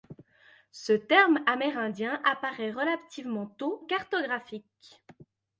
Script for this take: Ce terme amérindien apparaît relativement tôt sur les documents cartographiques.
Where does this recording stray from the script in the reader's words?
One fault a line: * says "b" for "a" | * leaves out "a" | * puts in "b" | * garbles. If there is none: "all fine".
* leaves out "sur les documents"